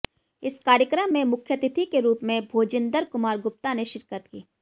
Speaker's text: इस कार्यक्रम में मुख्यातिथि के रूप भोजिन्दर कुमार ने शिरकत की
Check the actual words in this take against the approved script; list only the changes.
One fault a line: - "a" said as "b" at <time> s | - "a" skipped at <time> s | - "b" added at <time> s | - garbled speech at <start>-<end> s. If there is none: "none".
- "में" added at 2.2 s
- "गुप्ता" added at 3.4 s